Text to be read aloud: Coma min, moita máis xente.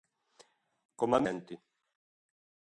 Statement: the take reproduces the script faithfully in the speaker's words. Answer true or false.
false